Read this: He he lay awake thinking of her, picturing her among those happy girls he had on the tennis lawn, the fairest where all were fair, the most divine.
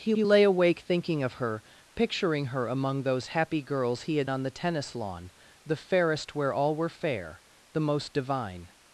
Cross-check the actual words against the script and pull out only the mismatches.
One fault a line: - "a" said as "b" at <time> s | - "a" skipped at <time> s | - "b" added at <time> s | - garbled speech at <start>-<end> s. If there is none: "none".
none